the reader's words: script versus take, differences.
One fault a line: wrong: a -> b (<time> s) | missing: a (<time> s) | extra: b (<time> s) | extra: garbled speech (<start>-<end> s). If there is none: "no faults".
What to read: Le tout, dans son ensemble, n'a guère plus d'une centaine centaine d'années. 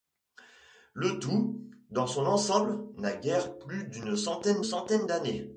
no faults